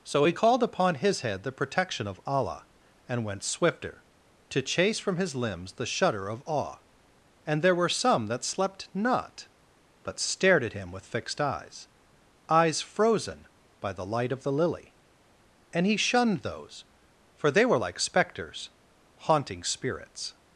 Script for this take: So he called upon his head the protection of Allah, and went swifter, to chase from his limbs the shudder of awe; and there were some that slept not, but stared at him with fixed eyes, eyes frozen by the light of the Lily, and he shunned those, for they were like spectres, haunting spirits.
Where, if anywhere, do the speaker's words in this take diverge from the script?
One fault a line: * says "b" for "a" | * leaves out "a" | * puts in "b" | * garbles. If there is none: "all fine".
all fine